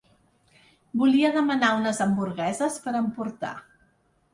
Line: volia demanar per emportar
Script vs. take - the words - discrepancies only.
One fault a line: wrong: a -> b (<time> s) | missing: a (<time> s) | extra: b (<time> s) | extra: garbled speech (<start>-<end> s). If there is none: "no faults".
extra: unes hamburgueses (1.8 s)